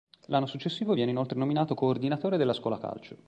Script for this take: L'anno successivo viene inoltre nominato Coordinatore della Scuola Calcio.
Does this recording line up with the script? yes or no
yes